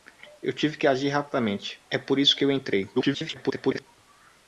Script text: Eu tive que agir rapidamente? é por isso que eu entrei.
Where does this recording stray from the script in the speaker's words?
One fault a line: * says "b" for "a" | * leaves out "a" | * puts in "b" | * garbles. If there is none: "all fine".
* garbles